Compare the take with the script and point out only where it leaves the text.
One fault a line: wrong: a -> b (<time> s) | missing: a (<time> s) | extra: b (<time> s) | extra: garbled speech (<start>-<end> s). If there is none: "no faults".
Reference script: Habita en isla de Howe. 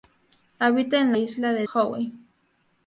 no faults